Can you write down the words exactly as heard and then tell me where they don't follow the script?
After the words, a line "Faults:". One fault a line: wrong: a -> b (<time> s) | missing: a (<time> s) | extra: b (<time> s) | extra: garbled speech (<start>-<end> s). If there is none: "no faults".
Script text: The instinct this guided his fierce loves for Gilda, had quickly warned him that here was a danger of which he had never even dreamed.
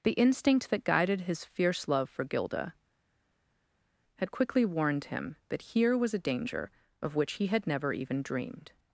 The instinct that guided his fierce love for Gilda, had quickly warned him that here was a danger of which he had never even dreamed.
Faults:
wrong: this -> that (0.7 s)
wrong: loves -> love (1.9 s)